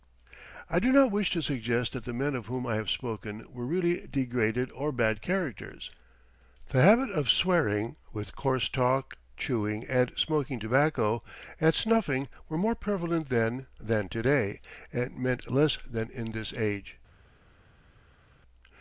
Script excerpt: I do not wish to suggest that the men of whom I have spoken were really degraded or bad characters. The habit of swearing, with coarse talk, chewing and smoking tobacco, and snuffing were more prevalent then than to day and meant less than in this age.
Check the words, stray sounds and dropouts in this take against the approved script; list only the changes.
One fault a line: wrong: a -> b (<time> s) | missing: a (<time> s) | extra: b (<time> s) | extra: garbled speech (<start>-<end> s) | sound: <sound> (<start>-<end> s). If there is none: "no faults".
no faults